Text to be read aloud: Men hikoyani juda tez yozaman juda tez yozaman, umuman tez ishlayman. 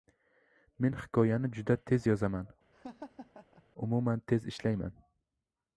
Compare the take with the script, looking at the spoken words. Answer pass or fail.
fail